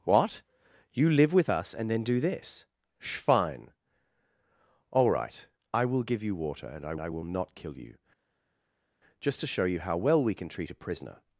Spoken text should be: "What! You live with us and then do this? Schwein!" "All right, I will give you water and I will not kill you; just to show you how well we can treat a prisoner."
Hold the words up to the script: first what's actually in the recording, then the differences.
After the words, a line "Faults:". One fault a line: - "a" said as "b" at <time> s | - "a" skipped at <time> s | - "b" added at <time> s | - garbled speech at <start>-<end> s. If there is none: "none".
"What! You live with us and then do this? Schwein!" "All right, I will give you water and I I will not kill you; just to show you how well we can treat a prisoner."
Faults:
- "I" added at 7.0 s